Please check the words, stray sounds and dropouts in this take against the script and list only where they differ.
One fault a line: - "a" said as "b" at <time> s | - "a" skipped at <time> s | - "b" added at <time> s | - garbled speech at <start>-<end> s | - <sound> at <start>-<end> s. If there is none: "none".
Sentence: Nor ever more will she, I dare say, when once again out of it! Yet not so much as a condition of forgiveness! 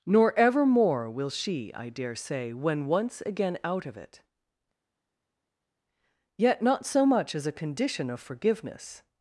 none